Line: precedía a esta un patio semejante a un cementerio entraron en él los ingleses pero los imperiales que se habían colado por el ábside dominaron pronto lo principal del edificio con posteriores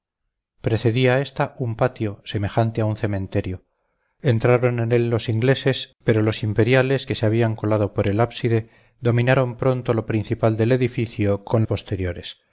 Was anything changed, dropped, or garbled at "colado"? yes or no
no